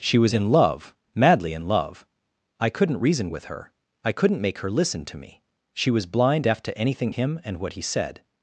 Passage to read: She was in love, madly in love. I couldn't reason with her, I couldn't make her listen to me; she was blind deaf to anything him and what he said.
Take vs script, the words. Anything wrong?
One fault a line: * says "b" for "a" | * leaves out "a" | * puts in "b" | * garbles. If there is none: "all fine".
all fine